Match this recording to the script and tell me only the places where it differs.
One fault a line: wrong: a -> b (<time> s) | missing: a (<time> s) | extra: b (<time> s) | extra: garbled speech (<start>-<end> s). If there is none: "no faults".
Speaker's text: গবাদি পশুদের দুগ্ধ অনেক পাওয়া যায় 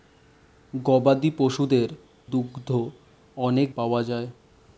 no faults